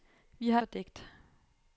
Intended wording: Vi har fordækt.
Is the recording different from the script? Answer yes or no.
no